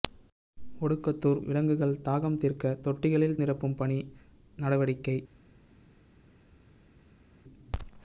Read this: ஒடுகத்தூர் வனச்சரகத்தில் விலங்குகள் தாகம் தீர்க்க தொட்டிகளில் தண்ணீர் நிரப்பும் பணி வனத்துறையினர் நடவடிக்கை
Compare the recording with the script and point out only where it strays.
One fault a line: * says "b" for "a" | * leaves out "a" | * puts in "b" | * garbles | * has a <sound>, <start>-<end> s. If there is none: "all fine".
* leaves out "வனச்சரகத்தில்"
* leaves out "தண்ணீர்"
* leaves out "வனத்துறையினர்"